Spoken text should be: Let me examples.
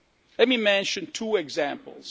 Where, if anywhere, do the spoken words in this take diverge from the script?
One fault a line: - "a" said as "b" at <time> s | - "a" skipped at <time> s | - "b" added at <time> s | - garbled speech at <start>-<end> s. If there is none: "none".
- "mention two" added at 0.6 s